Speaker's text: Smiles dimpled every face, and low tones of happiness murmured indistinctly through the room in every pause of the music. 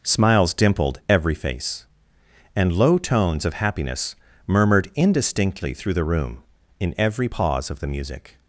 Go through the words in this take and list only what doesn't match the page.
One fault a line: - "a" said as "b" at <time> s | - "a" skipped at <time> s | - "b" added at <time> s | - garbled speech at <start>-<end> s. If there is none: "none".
none